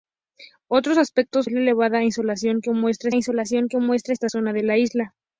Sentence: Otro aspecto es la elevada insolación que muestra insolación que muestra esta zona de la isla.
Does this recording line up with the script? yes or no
yes